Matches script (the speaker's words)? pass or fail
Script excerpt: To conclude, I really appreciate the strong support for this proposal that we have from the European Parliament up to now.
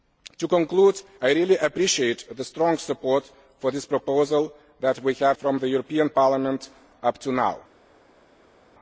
pass